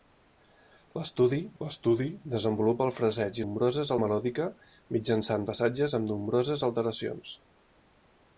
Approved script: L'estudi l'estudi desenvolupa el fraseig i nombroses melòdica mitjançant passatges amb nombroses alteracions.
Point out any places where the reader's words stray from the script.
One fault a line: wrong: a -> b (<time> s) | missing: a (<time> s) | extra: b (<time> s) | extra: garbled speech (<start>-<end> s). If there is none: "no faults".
no faults